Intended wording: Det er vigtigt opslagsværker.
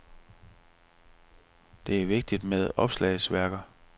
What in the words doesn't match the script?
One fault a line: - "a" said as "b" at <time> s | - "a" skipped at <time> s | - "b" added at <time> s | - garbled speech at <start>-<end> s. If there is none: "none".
- "med" added at 2.4 s